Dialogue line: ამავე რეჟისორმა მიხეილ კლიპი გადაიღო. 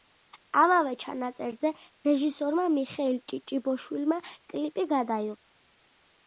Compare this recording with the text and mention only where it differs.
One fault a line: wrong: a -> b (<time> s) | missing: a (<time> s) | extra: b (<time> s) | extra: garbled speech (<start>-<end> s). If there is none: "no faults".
extra: ჩანაწერზე (1.0 s)
extra: ჭიჭიბოშვილმა (3.3 s)